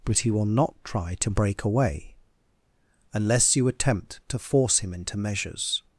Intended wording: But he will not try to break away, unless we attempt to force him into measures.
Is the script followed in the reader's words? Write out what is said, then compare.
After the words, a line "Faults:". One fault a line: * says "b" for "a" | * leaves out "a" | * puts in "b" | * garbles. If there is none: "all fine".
But he will not try to break away, unless you attempt to force him into measures.
Faults:
* says "you" for "we"